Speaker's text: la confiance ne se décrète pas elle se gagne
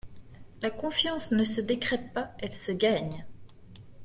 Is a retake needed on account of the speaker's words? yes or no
no